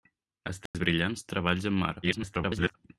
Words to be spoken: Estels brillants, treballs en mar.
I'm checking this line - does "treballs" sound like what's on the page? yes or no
yes